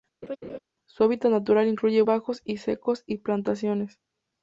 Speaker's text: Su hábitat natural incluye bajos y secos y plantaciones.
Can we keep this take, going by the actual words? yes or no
yes